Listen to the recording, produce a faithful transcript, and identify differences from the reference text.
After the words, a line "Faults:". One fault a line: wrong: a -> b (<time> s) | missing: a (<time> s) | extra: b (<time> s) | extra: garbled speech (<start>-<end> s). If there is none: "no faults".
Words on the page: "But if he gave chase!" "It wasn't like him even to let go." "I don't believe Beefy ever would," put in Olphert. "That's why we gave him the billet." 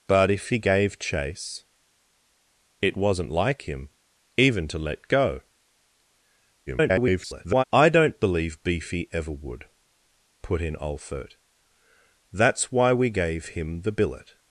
"But if he gave chase!" "It wasn't like him even to let go." [garbled] "I don't believe Beefy ever would," put in Olphert. "That's why we gave him the billet."
Faults:
extra: garbled speech (6.7-7.6 s)